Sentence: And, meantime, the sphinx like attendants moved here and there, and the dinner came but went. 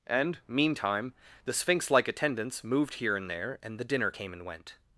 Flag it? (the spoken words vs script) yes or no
yes